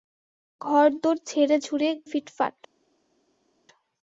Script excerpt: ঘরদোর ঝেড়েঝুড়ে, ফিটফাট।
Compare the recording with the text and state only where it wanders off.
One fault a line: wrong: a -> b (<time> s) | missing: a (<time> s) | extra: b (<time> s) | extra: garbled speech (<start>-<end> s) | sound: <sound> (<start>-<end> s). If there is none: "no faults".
no faults